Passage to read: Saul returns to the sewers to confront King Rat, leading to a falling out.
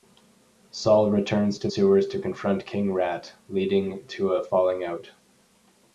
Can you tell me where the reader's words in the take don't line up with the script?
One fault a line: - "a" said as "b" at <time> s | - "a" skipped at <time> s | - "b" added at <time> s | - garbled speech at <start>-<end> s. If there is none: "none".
- "the" skipped at 1.7 s